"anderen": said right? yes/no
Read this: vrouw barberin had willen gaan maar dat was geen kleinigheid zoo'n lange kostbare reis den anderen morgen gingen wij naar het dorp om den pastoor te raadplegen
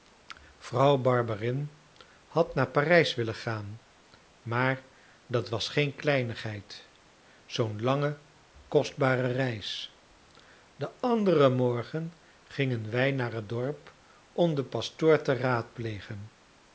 yes